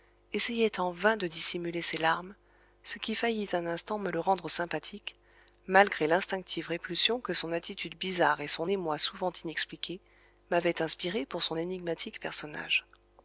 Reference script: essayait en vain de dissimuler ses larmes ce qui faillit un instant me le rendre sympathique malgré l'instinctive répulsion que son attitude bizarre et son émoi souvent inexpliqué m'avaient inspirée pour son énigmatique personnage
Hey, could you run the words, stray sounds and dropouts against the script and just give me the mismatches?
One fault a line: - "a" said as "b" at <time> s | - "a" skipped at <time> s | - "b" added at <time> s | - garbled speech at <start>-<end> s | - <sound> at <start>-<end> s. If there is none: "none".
none